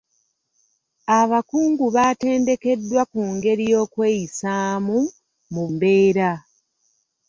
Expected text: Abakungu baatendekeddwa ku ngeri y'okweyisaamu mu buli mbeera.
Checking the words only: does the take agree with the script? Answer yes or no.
no